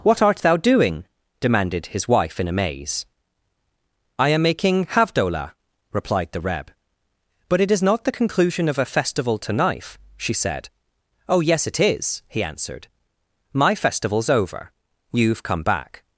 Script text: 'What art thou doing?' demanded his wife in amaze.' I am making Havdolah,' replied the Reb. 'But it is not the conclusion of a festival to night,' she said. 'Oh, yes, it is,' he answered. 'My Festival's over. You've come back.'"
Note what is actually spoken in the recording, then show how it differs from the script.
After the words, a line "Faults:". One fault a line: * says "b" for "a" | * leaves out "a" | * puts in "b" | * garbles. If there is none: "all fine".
'What art thou doing?' demanded his wife in amaze.' I am making Havdolah,' replied the Reb. 'But it is not the conclusion of a festival to knife,' she said. 'Oh, yes, it is,' he answered. 'My Festival's over. You've come back.'"
Faults:
* says "knife" for "night"